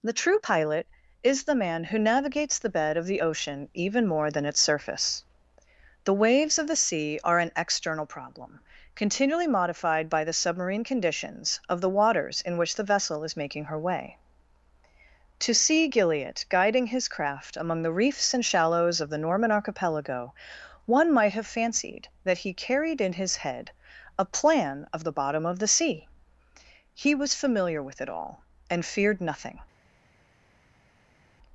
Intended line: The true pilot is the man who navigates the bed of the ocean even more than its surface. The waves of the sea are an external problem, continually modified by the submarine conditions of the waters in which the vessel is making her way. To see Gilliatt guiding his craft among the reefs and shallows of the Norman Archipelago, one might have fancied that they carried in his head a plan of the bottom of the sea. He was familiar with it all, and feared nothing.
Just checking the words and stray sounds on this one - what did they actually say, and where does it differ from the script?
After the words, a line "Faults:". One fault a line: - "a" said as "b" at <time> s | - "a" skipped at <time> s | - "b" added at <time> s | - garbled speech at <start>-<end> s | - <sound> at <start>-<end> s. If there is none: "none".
The true pilot is the man who navigates the bed of the ocean even more than its surface. The waves of the sea are an external problem, continually modified by the submarine conditions of the waters in which the vessel is making her way. To see Gilliatt guiding his craft among the reefs and shallows of the Norman Archipelago, one might have fancied that he carried in his head a plan of the bottom of the sea. He was familiar with it all, and feared nothing.
Faults:
- "they" said as "he" at 22.4 s